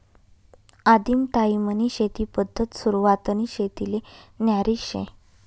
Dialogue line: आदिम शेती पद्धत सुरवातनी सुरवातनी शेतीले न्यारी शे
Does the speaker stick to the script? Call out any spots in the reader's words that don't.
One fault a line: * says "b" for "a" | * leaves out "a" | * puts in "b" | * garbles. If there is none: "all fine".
* puts in "टायीमनी"
* leaves out "सुरवातनी"